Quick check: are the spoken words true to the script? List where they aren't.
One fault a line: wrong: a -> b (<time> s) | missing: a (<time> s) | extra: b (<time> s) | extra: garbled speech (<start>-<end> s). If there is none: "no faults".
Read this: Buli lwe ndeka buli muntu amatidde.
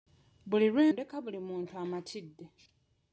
no faults